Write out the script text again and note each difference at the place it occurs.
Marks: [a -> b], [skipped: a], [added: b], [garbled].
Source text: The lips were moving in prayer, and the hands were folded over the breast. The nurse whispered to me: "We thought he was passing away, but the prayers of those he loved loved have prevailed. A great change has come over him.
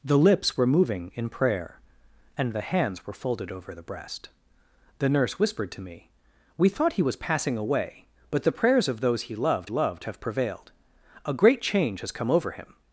The lips were moving in prayer, and the hands were folded over the breast. The nurse whispered to me: "We thought he was passing away, but the prayers of those he loved loved have prevailed. A great change has come over him.